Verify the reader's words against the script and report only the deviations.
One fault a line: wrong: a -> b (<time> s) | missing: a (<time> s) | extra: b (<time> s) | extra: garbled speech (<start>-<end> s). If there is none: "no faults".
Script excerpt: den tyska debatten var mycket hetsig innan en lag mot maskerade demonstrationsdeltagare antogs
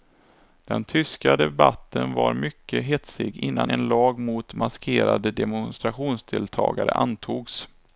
no faults